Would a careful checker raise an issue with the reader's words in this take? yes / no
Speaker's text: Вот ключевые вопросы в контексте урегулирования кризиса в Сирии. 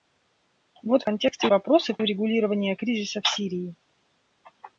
yes